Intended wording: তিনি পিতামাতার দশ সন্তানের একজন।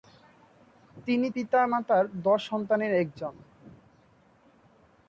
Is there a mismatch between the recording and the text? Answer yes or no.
no